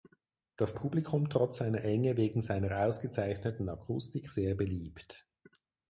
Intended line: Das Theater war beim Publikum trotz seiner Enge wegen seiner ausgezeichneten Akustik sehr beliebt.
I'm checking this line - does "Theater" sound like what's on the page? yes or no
no